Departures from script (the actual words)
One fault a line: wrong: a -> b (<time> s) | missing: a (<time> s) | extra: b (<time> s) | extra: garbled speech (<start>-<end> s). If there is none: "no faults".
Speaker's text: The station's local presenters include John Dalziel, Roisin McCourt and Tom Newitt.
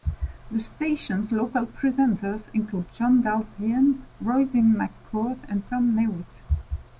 no faults